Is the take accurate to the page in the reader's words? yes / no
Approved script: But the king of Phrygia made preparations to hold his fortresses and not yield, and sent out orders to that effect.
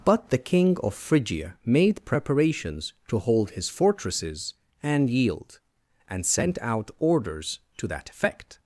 no